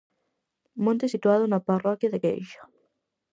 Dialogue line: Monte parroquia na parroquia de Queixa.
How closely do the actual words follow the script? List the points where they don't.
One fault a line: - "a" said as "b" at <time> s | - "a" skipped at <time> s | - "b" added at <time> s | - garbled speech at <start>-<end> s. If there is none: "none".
- "parroquia" said as "situado" at 1.1 s